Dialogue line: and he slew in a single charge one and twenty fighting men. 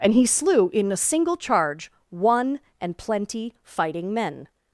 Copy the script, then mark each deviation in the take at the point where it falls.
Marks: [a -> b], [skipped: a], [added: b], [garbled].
and he slew in a single charge one and [twenty -> plenty] fighting men.